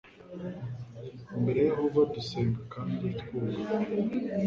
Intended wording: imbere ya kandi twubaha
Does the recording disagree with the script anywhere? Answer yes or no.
yes